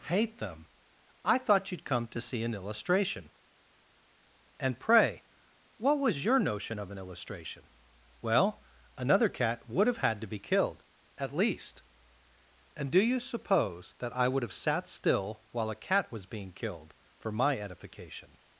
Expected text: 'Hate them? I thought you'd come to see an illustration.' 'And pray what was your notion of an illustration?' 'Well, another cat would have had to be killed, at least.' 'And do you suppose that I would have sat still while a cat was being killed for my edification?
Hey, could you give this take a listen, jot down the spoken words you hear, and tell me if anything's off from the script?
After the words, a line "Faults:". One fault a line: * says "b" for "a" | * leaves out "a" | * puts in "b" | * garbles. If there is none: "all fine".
'Hate them? I thought you'd come to see an illustration.' 'And pray what was your notion of an illustration?' 'Well, another cat would have had to be killed, at least.' 'And do you suppose that I would have sat still while a cat was being killed for my edification?
Faults:
all fine